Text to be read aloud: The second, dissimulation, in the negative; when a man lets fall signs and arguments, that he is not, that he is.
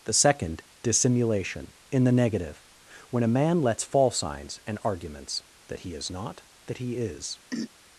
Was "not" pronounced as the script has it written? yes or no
yes